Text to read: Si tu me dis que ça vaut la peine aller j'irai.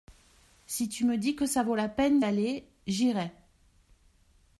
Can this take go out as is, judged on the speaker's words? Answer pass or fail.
pass